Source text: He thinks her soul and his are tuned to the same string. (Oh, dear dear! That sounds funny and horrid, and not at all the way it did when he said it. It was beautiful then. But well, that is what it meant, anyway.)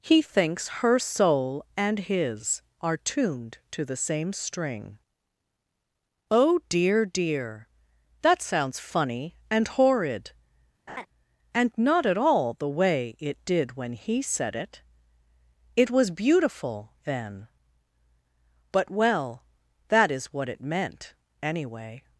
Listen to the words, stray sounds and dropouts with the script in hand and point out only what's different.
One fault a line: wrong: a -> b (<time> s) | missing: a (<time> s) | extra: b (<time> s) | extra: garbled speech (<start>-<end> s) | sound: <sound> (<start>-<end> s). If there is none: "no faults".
sound: laugh (10.9-11.1 s)